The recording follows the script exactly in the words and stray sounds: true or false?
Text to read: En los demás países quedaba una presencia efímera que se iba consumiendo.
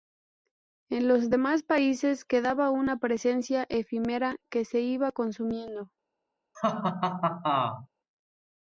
false